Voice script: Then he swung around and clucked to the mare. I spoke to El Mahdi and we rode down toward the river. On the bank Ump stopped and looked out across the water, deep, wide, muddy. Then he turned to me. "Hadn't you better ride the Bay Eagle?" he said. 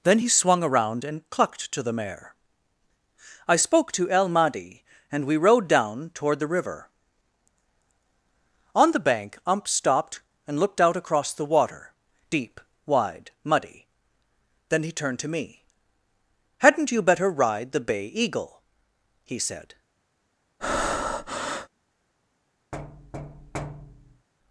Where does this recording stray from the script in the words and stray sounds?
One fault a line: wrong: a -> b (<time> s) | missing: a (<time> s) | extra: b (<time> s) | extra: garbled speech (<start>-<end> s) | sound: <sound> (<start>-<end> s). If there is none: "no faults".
sound: breath (20.6-21.7 s)
sound: thud (22.7-24.3 s)